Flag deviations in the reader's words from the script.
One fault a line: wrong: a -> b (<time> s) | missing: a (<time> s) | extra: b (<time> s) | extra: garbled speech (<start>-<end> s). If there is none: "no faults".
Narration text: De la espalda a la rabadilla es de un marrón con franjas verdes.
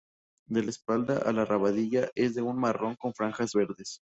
no faults